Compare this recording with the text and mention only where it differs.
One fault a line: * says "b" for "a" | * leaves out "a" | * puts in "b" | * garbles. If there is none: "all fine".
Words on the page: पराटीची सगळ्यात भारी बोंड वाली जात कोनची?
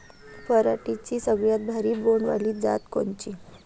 all fine